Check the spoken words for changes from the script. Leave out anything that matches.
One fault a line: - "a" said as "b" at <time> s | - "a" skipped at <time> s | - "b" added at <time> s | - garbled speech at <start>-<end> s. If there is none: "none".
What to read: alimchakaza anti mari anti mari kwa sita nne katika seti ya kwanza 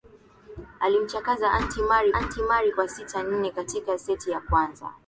none